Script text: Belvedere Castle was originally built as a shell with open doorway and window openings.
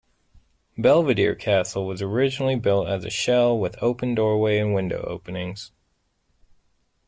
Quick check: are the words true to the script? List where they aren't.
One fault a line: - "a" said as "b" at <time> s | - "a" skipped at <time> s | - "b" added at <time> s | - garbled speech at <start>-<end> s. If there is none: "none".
none